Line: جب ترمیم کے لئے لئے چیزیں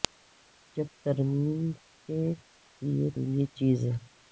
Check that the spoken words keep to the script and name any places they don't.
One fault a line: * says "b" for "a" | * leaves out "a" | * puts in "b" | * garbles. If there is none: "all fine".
all fine